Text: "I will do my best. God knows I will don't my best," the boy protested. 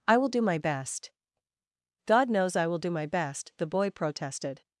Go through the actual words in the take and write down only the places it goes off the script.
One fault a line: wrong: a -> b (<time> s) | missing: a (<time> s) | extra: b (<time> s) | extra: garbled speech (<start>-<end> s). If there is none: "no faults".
wrong: don't -> do (2.8 s)